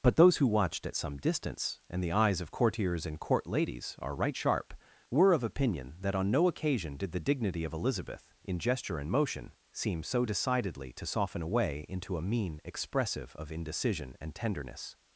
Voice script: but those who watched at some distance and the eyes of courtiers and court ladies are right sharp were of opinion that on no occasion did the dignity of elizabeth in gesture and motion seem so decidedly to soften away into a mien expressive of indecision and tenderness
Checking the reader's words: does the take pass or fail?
pass